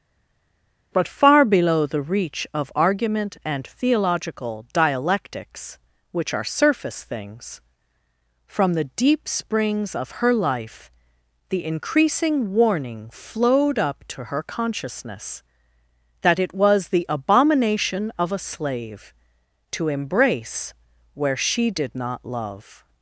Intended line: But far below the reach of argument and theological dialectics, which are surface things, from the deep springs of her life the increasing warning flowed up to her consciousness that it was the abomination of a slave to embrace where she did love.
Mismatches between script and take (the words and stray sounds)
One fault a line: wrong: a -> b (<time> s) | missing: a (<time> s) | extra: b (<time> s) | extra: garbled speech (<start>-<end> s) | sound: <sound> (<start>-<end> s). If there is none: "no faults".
extra: not (21.9 s)